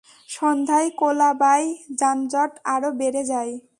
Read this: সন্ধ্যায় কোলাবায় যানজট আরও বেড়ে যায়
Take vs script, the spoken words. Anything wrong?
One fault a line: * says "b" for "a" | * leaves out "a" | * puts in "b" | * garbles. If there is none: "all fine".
all fine